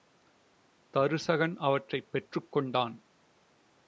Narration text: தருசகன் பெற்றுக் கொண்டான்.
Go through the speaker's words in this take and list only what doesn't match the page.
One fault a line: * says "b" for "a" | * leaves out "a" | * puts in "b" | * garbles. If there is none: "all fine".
* puts in "அவற்றைப்"